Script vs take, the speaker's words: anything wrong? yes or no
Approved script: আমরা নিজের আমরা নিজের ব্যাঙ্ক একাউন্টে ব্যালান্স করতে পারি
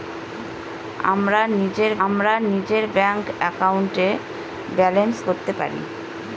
no